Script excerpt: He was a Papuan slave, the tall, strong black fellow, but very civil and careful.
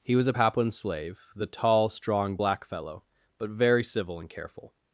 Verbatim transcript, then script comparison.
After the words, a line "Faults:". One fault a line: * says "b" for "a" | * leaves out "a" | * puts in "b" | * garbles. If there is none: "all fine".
He was a Papuan slave, the tall, strong black fellow, but very civil and careful.
Faults:
all fine